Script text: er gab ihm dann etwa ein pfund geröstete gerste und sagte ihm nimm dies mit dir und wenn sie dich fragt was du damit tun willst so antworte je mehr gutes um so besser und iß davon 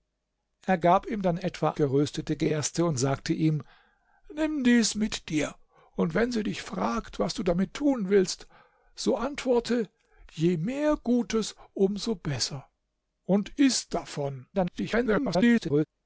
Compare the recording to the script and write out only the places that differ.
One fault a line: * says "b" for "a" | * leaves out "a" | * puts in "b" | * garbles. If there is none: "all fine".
* leaves out "ein pfund"
* garbles